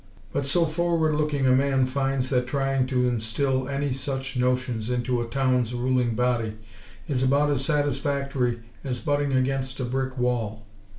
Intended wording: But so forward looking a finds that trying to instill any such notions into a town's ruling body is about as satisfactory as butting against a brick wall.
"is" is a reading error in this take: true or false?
false